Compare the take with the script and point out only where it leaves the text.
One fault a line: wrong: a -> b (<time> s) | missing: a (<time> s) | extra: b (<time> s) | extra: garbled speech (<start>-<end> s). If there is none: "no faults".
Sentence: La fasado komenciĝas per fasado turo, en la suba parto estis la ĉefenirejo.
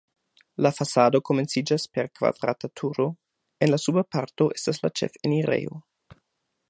wrong: fasado -> kvadrata (2.2 s)
wrong: estis -> estas (4.6 s)